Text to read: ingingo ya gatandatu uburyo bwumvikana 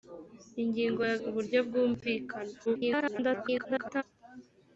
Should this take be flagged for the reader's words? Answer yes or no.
yes